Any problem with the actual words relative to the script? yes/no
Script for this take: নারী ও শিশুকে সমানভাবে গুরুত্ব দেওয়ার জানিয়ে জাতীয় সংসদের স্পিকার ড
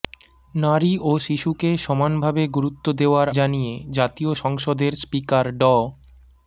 no